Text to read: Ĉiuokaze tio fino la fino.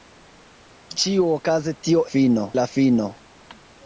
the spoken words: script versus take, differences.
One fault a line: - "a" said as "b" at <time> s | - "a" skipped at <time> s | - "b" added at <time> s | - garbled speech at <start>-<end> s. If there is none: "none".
none